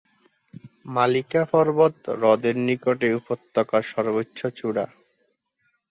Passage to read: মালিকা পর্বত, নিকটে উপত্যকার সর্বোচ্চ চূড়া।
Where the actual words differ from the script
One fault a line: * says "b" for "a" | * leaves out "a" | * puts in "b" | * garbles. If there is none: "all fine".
* puts in "হ্রদের"